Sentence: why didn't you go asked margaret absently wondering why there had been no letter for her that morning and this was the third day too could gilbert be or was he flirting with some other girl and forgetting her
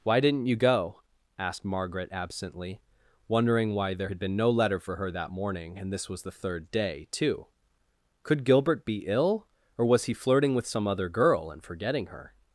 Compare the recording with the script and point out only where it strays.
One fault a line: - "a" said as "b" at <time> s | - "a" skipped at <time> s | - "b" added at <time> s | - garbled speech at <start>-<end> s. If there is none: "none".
- "ill" added at 9.1 s